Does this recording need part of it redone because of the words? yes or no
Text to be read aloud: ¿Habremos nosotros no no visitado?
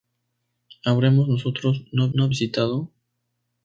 no